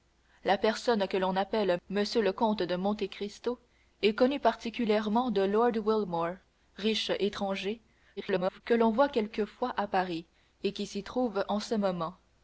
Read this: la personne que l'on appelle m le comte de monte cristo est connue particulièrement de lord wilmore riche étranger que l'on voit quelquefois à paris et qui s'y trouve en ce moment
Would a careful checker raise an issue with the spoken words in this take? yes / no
yes